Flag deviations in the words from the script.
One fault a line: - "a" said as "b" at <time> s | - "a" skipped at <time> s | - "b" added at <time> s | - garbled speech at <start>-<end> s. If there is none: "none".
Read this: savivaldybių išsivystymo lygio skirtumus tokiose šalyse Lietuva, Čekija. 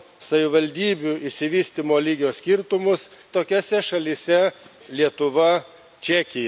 none